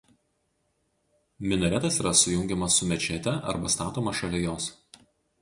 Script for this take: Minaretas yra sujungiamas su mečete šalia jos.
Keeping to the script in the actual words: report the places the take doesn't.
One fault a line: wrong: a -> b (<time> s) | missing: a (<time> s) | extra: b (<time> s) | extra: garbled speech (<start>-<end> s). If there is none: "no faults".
extra: arba statomas (3.6 s)